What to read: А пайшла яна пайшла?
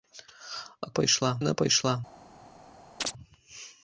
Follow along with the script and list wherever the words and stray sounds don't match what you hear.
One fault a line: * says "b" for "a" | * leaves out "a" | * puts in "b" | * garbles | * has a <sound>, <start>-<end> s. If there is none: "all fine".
* has a chirp, 3.0-3.1 s